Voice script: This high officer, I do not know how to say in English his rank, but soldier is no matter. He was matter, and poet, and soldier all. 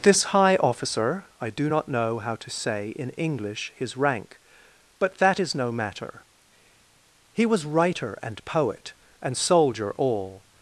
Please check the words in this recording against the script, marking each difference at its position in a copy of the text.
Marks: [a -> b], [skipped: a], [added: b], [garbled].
This high officer, I do not know how to say in English his rank, but [soldier -> that] is no matter. He was [matter, -> writer] and poet, and soldier all.